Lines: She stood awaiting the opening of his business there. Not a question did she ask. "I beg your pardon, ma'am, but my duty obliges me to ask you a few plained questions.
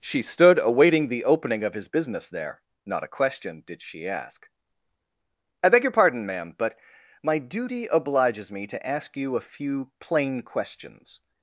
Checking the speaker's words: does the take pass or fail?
fail